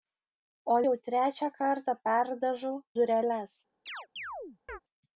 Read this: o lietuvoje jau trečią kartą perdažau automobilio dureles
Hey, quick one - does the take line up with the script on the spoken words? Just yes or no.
no